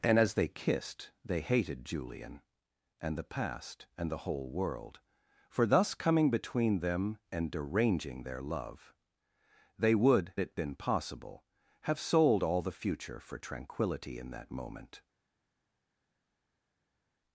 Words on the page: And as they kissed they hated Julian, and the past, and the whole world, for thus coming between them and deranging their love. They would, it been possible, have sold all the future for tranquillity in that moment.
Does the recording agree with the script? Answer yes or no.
yes